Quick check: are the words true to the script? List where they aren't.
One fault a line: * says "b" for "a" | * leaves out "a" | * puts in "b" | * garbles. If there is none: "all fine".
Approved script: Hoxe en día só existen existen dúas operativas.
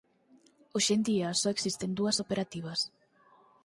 * leaves out "existen"